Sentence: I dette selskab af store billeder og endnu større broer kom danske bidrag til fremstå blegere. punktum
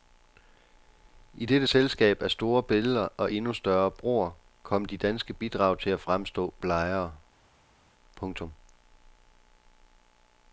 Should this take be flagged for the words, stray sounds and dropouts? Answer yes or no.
yes